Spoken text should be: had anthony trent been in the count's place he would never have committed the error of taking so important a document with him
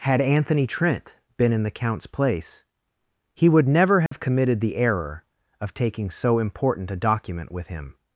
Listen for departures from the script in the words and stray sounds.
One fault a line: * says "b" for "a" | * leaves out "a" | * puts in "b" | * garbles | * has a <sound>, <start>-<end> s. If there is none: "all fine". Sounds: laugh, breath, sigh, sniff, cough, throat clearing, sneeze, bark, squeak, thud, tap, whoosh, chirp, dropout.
* has a dropout, 4.1-4.1 s